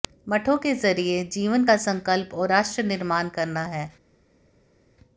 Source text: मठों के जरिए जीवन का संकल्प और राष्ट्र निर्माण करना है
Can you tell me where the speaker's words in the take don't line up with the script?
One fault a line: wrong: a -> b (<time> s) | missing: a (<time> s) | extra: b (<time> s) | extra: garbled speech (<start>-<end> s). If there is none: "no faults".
no faults